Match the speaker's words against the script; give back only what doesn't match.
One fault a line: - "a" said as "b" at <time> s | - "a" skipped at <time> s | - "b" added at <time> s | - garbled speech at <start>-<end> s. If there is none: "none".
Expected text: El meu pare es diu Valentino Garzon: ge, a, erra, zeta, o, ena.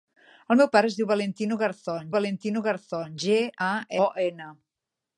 - "Valentino Garzon" added at 2.2 s
- "erra zeta" skipped at 3.7 s